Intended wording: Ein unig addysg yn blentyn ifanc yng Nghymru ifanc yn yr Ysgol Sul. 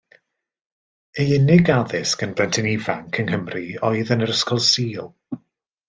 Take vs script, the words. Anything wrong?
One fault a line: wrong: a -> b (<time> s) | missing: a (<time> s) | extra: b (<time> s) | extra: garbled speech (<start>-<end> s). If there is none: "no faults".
wrong: Ein -> Ei (1.2 s)
wrong: ifanc -> oedd (3.9 s)